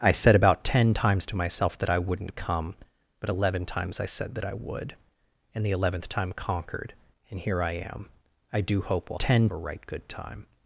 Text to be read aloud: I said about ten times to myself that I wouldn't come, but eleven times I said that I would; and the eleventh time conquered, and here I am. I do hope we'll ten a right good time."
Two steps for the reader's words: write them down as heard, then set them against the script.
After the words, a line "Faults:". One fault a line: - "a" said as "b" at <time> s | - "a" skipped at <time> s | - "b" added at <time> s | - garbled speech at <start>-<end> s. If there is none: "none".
I said about ten times to myself that I wouldn't come, but eleven times I said that I would; and the eleventh time conquered, and here I am. I do hope we'll ten a right good time."
Faults:
none